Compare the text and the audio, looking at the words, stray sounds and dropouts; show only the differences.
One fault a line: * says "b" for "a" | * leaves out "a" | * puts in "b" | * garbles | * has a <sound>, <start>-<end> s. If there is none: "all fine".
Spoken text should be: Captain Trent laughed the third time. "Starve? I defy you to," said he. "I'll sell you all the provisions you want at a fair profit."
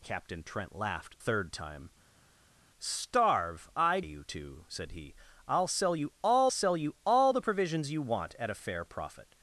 * leaves out "the"
* leaves out "defy"
* puts in "sell you all"